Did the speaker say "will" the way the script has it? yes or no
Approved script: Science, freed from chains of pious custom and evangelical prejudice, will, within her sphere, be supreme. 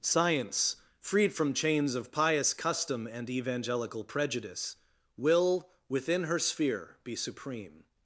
yes